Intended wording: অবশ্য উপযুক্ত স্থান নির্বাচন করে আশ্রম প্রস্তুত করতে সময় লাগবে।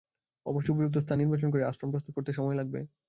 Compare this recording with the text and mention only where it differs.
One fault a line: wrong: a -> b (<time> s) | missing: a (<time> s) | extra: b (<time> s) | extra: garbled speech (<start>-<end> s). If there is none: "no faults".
no faults